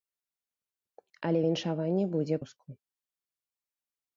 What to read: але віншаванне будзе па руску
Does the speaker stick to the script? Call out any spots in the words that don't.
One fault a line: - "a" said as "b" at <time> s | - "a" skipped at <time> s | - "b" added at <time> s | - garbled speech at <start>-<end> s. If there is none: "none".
- "па" skipped at 2.4 s